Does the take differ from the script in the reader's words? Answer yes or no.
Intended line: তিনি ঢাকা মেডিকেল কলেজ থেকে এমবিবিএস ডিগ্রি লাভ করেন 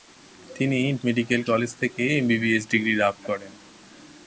yes